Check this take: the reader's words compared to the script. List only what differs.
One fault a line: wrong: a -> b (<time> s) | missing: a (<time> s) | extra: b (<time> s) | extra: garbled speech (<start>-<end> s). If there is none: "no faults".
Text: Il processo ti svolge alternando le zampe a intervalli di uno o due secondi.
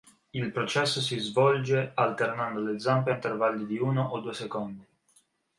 wrong: ti -> si (1.0 s)